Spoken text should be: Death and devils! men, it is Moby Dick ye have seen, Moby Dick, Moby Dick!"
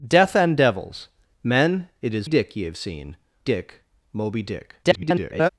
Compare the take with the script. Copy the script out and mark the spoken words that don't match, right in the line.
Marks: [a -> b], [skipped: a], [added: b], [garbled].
Death and devils! men, it is [skipped: Moby] Dick ye have seen, [skipped: Moby] Dick, Moby Dick!" [garbled]